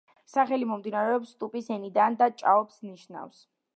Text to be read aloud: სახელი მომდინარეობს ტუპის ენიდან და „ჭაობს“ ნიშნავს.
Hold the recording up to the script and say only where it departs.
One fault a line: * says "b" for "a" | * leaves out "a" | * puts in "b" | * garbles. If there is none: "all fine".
all fine